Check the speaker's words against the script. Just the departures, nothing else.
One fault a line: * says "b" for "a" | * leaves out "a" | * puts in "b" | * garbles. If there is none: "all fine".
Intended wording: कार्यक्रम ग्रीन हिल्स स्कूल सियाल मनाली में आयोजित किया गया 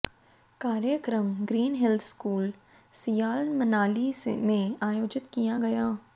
all fine